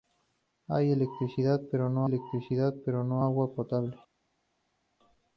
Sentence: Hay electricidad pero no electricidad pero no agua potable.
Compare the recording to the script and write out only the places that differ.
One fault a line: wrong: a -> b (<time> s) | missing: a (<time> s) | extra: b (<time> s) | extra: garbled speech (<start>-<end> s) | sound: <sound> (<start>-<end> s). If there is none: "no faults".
no faults